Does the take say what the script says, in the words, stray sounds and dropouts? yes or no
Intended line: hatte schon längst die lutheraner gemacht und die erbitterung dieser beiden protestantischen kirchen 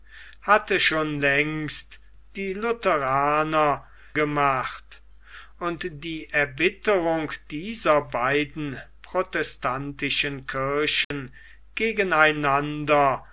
no